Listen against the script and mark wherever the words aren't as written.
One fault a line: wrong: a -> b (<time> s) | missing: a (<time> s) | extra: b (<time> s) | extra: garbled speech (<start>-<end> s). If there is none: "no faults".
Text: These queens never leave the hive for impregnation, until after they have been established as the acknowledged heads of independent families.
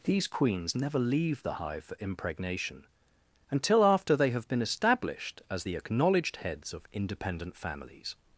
no faults